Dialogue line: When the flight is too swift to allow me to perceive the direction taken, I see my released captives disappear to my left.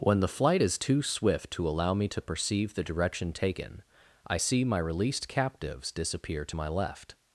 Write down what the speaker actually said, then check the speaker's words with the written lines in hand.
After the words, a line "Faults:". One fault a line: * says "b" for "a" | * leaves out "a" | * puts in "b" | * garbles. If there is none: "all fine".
When the flight is too swift to allow me to perceive the direction taken, I see my released captives disappear to my left.
Faults:
all fine